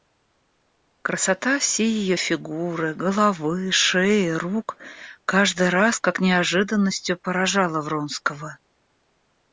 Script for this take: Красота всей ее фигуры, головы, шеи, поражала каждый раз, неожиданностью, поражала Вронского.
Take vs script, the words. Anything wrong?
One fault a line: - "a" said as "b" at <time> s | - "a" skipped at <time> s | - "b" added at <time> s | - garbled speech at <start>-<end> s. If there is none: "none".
- "поражала" said as "рук" at 4.3 s
- "как" added at 6.0 s